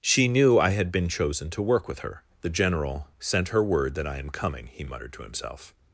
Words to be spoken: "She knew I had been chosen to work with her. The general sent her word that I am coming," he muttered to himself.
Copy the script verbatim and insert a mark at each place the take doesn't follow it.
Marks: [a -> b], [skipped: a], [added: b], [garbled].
"She knew I had been chosen to work with her. The general sent her word that I am coming," he muttered to himself.